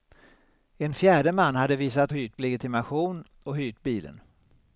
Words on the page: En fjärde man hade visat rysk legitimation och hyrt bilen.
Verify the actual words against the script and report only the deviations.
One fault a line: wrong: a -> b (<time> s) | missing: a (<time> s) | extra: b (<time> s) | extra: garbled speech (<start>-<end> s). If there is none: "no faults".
wrong: rysk -> hyrt (2.1 s)